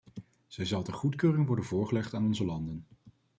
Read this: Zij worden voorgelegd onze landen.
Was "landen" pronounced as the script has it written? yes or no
yes